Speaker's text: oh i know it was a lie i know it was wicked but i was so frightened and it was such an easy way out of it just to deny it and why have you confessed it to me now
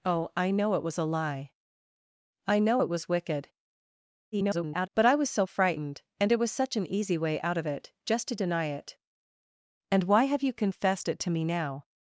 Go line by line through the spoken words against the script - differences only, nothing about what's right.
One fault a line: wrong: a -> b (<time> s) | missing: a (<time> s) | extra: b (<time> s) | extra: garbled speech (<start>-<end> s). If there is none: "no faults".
extra: garbled speech (4.3-4.9 s)